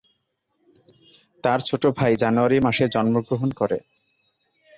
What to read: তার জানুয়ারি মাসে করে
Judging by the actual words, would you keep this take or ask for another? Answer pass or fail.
fail